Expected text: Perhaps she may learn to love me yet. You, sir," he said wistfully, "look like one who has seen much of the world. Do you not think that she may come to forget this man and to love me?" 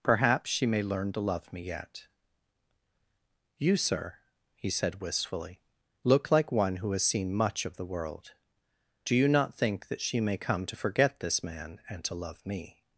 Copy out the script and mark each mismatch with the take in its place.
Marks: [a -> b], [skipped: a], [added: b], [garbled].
Perhaps she may learn to love me yet. You, sir," he said wistfully, "look like one who has seen much of the world. Do you not think that she may come to forget this man and to love me?"